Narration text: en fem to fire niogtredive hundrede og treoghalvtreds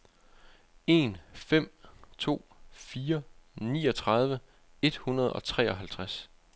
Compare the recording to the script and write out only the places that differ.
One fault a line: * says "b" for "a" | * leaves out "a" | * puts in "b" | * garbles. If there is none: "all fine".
* puts in "et"